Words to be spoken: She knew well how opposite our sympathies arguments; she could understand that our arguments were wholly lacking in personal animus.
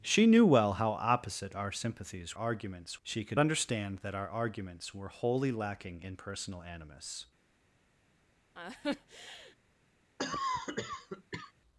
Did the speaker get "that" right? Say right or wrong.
right